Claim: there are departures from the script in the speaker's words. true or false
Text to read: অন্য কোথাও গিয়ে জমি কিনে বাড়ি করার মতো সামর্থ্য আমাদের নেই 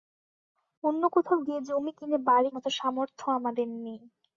true